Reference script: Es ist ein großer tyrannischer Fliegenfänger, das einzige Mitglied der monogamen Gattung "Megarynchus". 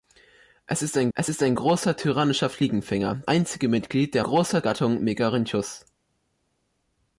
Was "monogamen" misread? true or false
true